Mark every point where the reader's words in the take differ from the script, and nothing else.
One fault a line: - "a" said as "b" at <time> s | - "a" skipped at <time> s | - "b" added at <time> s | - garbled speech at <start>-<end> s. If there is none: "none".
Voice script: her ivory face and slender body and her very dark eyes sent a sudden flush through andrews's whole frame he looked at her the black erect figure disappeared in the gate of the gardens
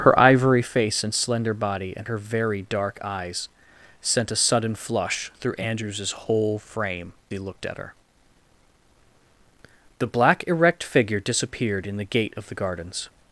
none